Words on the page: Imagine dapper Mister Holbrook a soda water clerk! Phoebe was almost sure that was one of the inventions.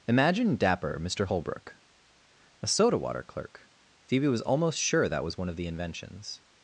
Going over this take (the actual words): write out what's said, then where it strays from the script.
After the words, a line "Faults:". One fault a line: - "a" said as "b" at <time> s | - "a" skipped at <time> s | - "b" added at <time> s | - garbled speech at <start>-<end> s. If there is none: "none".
Imagine dapper Mister Holbrook a soda water clerk! Phoebe was almost sure that was one of the inventions.
Faults:
none